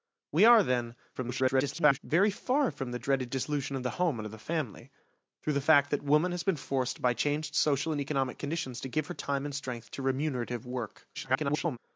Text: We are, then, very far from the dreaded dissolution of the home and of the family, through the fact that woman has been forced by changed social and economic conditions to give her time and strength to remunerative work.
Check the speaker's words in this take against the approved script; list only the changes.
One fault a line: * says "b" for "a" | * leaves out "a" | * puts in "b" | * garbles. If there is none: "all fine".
* garbles
* garbles